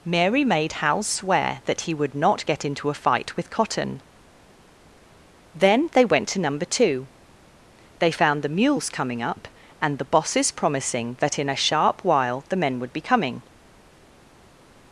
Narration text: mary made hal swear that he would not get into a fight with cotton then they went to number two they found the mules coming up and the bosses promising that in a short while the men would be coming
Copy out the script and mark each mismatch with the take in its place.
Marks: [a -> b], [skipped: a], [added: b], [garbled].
mary made hal swear that he would not get into a fight with cotton then they went to number two they found the mules coming up and the bosses promising that in a [short -> sharp] while the men would be coming